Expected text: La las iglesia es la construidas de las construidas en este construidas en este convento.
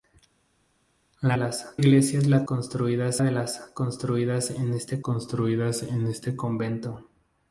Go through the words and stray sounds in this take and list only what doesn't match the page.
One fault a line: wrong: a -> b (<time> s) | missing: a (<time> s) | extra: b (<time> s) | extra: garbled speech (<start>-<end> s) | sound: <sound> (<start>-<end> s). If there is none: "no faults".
no faults